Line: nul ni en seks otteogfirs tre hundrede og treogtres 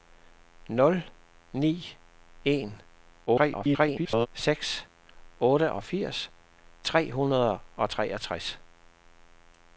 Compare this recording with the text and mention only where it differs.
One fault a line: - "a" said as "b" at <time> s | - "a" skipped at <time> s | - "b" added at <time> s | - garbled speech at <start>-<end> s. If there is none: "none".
- garbled speech at 3.3-4.3 s